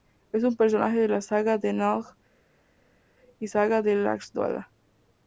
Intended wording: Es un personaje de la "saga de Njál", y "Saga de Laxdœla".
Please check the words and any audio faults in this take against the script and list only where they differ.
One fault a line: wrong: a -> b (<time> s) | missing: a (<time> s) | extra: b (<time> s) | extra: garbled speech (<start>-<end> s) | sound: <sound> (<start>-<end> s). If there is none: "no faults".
no faults